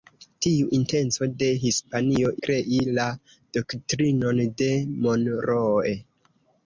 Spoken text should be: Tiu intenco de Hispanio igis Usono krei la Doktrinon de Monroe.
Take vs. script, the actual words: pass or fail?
fail